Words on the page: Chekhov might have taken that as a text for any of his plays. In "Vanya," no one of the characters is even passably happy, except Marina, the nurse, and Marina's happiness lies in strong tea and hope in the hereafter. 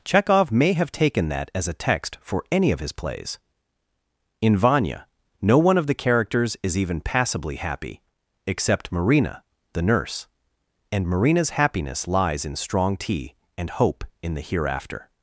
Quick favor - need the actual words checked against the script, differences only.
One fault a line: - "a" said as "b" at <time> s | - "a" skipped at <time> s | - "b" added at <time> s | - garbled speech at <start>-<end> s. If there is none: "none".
- "might" said as "may" at 0.5 s